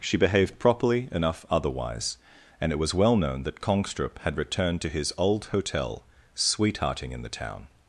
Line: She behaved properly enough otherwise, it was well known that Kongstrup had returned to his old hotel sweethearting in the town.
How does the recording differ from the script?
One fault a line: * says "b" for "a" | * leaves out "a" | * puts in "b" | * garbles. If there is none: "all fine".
* puts in "and"